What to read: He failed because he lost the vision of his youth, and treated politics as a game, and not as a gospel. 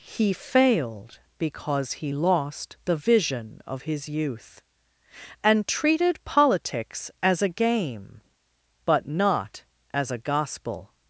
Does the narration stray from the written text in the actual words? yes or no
yes